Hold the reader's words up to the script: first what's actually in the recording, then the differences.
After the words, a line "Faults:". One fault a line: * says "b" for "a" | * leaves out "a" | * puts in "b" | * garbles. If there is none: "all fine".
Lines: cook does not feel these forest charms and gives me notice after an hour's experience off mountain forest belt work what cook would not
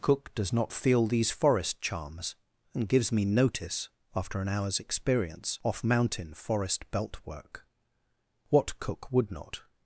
cook does not feel these forest charms and gives me notice after an hour's experience off mountain forest belt work what cook would not
Faults:
all fine